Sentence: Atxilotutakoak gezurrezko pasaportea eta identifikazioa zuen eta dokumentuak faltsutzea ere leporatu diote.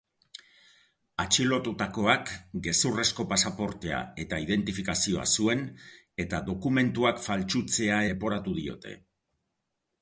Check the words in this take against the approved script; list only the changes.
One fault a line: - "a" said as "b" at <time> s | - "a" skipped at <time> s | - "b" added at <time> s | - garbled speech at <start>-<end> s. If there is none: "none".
- "ere" skipped at 8.0 s